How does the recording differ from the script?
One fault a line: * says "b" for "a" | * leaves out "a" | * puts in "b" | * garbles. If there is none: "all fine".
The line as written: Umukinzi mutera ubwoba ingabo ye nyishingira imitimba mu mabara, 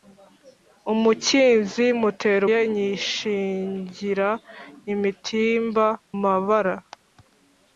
* leaves out "ubwoba ingabo"
* leaves out "mu"